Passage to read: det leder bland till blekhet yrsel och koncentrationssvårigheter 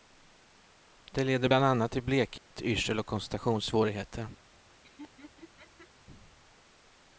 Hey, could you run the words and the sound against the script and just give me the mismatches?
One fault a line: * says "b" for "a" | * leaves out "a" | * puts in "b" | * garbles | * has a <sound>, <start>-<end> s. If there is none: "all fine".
* puts in "annat"
* has a dropout, 2.4-2.5 s
* has a laugh, 4.8-5.9 s